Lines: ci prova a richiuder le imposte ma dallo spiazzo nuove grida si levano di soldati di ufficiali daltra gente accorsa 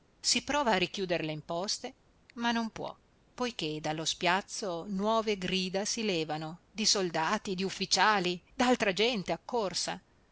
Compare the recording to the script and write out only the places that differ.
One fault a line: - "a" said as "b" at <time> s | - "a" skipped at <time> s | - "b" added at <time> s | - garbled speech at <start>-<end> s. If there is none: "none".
- "ci" said as "si" at 0.2 s
- "non può poiché" added at 2.5 s